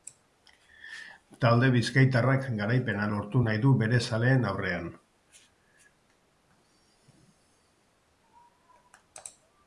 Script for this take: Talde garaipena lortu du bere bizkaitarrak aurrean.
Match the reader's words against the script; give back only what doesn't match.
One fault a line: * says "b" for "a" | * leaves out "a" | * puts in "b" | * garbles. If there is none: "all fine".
* puts in "bizkaitarrak"
* puts in "nahi"
* says "zaleen" for "bizkaitarrak"